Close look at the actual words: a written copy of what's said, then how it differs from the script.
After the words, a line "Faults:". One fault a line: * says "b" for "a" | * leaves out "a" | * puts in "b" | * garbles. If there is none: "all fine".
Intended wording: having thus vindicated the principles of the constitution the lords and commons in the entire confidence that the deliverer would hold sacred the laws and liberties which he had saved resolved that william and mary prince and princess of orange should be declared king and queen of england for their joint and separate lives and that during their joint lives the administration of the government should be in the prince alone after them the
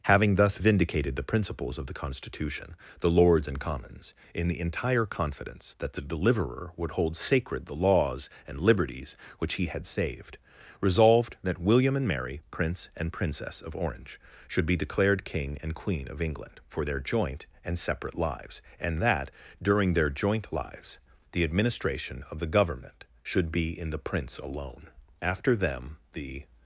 having thus vindicated the principles of the constitution the lords and commons in the entire confidence that the deliverer would hold sacred the laws and liberties which he had saved resolved that william and mary prince and princess of orange should be declared king and queen of england for their joint and separate lives and that during their joint lives the administration of the government should be in the prince alone after them the
Faults:
all fine